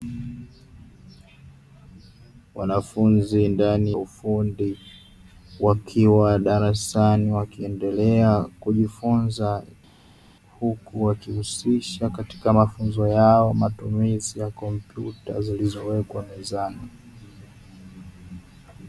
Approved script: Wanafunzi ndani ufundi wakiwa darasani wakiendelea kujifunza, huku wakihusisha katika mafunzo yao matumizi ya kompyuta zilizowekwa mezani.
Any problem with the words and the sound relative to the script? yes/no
no